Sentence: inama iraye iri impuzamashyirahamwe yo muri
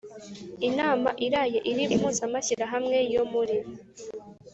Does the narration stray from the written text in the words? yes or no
no